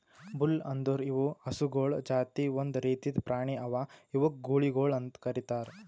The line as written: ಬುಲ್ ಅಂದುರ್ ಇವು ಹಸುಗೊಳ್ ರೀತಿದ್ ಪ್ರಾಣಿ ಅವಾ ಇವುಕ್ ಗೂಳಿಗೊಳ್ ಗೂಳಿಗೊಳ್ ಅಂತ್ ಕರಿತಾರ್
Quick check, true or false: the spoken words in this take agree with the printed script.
false